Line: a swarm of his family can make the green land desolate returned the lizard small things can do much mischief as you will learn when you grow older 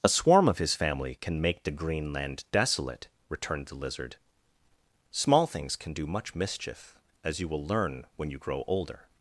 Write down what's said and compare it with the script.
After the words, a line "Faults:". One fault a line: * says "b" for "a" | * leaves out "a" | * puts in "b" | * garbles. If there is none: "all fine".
a swarm of his family can make the green land desolate returned the lizard small things can do much mischief as you will learn when you grow older
Faults:
all fine